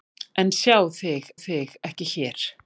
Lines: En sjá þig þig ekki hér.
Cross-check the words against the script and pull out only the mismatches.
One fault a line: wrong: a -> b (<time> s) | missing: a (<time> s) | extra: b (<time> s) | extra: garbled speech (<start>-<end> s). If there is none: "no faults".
no faults